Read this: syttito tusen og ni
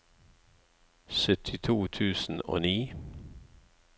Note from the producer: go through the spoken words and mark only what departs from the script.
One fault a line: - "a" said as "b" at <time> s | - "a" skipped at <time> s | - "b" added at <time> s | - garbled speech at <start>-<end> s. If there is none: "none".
none